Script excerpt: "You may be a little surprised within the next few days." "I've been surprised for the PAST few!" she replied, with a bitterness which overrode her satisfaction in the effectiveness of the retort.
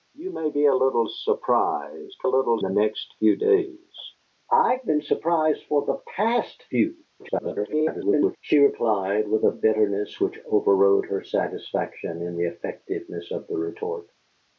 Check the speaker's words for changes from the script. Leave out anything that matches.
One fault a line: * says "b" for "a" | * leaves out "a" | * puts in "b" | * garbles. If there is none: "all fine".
* says "little" for "within"
* garbles